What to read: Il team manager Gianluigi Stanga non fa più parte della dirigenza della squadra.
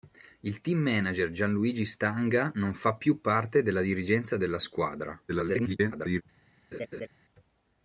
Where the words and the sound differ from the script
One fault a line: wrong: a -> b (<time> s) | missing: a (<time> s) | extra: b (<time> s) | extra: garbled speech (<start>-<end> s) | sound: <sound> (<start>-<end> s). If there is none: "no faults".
extra: garbled speech (5.3-6.2 s)
sound: laugh (6.7-7.1 s)